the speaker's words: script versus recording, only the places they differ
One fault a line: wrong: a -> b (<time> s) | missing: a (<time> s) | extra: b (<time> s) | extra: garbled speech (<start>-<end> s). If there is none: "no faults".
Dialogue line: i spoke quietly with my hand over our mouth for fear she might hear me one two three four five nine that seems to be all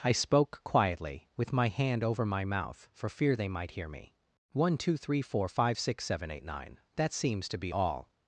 wrong: our -> my (2.2 s)
wrong: she -> they (3.4 s)
extra: six seven eight (5.8 s)